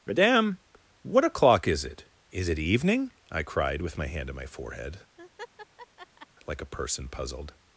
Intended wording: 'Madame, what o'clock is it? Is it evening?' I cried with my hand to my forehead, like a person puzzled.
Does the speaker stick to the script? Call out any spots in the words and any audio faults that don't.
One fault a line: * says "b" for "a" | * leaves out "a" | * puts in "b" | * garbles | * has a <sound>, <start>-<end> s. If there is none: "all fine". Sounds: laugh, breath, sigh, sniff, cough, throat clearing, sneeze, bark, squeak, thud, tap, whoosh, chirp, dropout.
* says "on" for "to"
* has a laugh, 5.2-6.3 s